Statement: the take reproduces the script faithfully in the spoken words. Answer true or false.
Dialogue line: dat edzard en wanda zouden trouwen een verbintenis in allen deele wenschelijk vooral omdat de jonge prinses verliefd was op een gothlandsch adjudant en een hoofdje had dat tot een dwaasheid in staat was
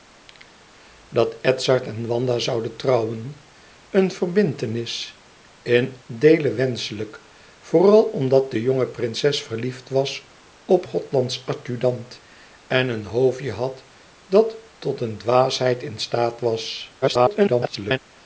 false